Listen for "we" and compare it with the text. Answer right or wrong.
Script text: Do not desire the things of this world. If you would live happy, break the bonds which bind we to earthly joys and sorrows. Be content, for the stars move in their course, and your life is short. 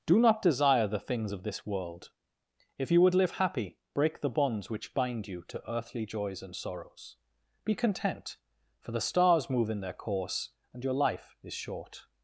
wrong